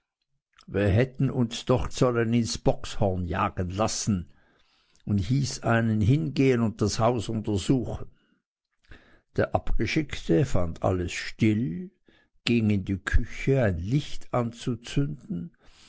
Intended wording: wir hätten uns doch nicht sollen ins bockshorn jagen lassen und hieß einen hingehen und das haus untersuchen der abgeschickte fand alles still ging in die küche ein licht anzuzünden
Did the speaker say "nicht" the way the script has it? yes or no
no